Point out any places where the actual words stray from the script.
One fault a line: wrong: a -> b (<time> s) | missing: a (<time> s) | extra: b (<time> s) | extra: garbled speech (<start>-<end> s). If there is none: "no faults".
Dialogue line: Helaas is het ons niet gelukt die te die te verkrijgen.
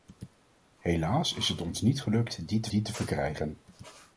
no faults